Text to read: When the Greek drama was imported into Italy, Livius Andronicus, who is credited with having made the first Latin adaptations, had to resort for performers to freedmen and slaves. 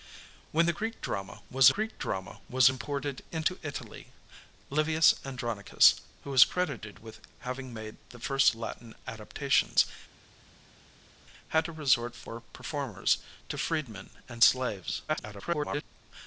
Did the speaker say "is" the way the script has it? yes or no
yes